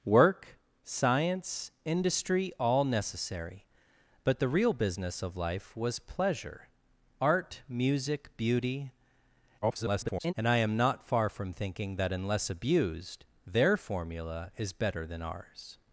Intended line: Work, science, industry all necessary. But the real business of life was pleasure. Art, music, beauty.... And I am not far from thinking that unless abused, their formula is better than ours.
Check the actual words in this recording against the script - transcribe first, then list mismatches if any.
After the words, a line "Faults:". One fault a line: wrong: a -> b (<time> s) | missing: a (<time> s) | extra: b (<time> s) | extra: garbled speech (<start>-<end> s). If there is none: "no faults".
Work, science, industry all necessary. But the real business of life was pleasure. Art, music, beauty.... [garbled] And I am not far from thinking that unless abused, their formula is better than ours.
Faults:
extra: garbled speech (9.6-10.3 s)